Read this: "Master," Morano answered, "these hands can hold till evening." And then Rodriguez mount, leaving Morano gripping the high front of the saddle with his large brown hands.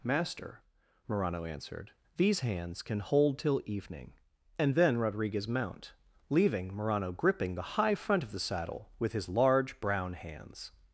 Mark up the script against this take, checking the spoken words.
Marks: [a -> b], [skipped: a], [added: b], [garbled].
"Master," Morano answered, "these hands can hold till evening." And then Rodriguez mount, leaving Morano gripping the high front of the saddle with his large brown hands.